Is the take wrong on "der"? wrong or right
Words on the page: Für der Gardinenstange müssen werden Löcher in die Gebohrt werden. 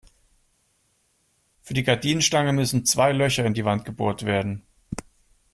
wrong